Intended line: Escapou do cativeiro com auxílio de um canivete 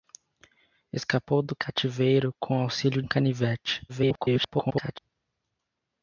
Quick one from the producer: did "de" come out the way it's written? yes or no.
no